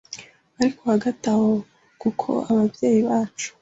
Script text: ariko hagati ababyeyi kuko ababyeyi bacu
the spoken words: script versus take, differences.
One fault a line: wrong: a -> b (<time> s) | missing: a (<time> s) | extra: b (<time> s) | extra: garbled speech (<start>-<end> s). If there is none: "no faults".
wrong: ababyeyi -> aho (1.3 s)